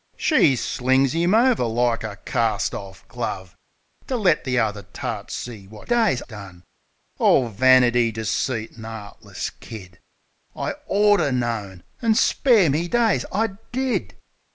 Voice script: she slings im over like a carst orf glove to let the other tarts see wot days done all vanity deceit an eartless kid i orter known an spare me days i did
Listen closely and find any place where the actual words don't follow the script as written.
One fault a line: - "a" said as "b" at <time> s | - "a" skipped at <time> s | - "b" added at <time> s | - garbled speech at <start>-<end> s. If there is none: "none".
none